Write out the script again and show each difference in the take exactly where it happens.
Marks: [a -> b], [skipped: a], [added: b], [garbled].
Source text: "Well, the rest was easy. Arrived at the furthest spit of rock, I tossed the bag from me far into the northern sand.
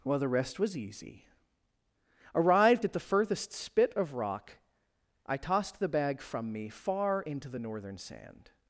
"Well, the rest was easy. Arrived at the furthest spit of rock, I tossed the bag from me far into the northern sand.